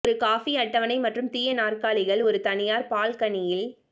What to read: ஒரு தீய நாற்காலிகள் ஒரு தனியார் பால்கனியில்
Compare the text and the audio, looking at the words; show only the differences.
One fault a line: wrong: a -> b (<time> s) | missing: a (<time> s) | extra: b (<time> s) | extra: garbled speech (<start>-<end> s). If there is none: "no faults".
extra: காபி அட்டவணை மற்றும் (0.2 s)